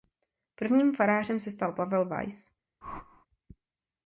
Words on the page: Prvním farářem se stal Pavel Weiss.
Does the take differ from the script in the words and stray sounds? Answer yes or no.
yes